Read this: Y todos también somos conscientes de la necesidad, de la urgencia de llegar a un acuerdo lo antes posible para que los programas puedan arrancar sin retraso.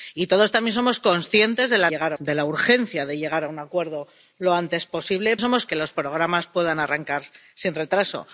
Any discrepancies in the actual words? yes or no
yes